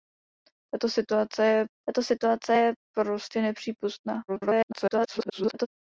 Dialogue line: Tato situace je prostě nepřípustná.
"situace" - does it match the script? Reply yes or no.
yes